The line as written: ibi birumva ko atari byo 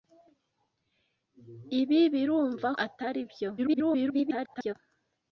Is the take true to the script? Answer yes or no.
no